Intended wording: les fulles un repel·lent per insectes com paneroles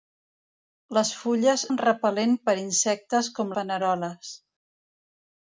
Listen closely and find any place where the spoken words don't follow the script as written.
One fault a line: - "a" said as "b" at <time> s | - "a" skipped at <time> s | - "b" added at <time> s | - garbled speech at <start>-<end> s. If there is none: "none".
none